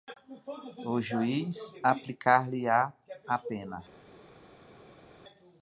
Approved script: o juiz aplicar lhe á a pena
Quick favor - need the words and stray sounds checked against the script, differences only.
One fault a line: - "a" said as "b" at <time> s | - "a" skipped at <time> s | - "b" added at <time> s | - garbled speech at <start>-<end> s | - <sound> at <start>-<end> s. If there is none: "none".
none